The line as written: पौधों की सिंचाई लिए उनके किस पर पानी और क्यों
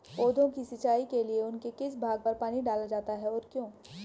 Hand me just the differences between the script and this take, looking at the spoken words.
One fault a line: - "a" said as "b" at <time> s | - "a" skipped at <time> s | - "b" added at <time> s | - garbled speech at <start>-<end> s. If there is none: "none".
- "के" added at 1.1 s
- "भाग" added at 2.0 s
- "डाला जाता है" added at 2.6 s